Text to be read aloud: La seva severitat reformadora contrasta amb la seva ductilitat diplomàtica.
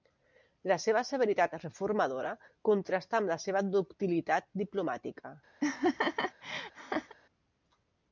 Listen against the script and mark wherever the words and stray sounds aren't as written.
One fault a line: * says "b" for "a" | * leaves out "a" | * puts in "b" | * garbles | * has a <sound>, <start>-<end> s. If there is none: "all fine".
* has a laugh, 5.6-7.1 s